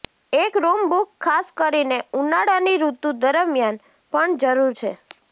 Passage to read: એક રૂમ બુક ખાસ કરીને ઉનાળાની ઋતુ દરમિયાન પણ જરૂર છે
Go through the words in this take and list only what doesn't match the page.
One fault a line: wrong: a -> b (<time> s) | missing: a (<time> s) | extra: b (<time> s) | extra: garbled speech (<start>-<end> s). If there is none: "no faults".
no faults